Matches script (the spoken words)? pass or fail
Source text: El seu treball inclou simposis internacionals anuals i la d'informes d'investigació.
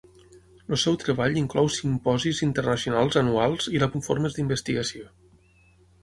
pass